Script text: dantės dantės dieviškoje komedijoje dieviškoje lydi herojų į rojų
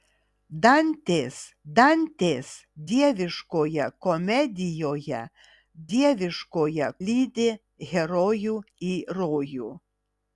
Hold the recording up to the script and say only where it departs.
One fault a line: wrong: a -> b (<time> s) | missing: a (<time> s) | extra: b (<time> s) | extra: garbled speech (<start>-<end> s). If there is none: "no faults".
no faults